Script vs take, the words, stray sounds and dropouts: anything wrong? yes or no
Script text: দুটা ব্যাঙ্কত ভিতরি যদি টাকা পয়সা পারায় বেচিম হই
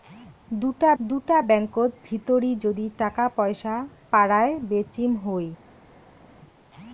yes